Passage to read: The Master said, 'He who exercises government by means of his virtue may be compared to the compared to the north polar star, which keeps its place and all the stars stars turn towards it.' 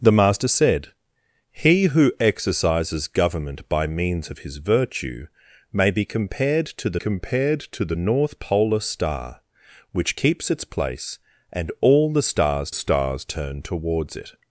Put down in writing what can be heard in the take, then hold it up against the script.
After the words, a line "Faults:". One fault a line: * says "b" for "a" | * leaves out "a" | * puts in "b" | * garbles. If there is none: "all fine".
The Master said, 'He who exercises government by means of his virtue may be compared to the compared to the north polar star, which keeps its place and all the stars stars turn towards it.'
Faults:
all fine